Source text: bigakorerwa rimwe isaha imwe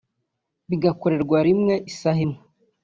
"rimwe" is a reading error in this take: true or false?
false